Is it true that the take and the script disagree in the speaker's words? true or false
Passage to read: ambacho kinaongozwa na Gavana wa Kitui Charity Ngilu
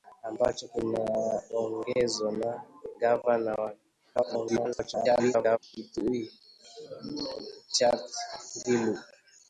true